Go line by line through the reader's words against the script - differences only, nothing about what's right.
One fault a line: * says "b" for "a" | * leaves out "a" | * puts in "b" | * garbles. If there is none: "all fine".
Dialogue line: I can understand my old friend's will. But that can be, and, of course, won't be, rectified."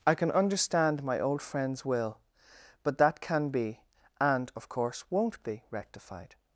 all fine